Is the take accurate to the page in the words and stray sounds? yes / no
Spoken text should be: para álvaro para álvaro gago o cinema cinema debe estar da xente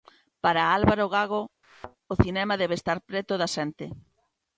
no